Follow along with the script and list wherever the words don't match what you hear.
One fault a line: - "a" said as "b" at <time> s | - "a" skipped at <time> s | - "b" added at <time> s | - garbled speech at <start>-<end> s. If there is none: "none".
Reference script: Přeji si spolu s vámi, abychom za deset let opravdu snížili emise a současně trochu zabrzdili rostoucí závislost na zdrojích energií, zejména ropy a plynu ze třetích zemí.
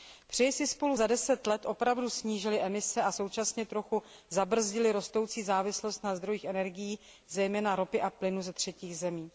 - "s vámi abychom" skipped at 1.0 s